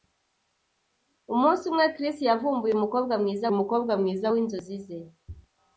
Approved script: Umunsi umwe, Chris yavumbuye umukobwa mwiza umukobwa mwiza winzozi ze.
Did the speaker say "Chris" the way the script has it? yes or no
yes